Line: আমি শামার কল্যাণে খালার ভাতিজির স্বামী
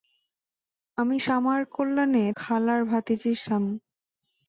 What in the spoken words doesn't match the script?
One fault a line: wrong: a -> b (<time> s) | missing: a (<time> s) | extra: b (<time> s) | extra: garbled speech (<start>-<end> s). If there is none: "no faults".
no faults